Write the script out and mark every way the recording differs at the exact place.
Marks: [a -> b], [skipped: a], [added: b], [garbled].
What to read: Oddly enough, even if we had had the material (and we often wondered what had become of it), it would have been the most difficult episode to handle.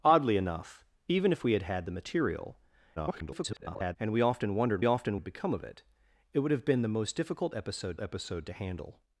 Oddly enough, even if we had had the material [garbled] (and we often wondered [what -> often] had become of it), it would have been the most difficult episode [added: episode] to handle.